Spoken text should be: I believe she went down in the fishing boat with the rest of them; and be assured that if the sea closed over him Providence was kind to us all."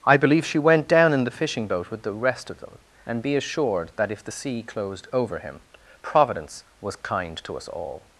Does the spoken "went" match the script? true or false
true